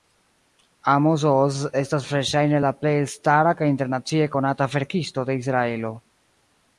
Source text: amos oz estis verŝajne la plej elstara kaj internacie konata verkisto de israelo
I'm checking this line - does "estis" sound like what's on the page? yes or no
no